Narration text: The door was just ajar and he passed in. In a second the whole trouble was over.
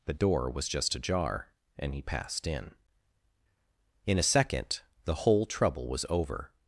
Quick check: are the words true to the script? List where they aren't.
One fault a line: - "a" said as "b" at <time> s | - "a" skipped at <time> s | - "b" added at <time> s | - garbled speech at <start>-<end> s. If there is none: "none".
none